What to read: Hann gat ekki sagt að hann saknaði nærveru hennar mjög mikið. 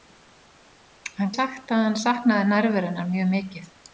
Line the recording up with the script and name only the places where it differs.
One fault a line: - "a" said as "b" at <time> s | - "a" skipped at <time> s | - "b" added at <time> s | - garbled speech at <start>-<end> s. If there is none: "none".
- "gat ekki" skipped at 1.4 s